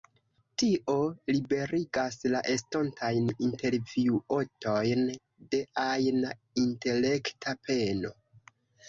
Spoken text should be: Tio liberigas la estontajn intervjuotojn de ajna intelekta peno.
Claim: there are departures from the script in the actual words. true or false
false